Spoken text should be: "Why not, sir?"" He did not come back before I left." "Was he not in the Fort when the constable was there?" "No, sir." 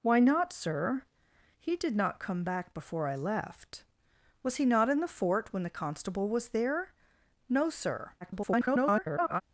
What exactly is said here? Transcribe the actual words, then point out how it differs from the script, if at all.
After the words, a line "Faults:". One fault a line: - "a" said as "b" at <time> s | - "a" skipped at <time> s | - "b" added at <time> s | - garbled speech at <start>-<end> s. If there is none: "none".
"Why not, sir?"" He did not come back before I left." "Was he not in the Fort when the constable was there?" "No, sir." [garbled]
Faults:
- garbled speech at 8.2-9.4 s